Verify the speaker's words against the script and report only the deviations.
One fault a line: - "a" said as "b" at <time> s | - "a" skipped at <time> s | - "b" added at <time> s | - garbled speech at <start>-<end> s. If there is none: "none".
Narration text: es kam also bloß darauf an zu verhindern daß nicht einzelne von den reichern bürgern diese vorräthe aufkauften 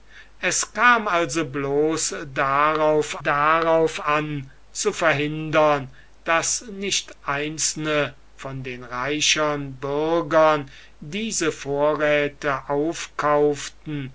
- "darauf" added at 3.2 s